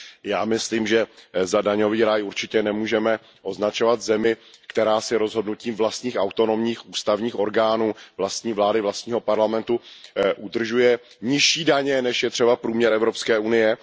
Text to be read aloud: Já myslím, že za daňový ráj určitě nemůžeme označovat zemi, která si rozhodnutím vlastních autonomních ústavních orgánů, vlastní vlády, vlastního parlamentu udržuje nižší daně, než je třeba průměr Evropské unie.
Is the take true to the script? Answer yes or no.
yes